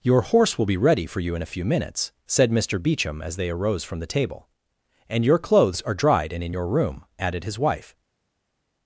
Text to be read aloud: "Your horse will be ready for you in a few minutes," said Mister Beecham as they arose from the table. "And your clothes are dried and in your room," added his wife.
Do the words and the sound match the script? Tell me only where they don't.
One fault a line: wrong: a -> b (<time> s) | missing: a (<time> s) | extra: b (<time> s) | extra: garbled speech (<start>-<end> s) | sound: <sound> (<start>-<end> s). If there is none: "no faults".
no faults